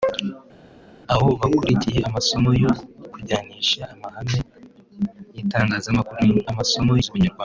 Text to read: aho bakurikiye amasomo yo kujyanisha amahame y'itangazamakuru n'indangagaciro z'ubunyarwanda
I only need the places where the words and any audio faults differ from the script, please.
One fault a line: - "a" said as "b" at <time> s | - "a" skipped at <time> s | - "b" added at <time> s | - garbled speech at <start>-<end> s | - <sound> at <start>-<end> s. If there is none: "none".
- "n'indangagaciro" said as "amasomo" at 6.5 s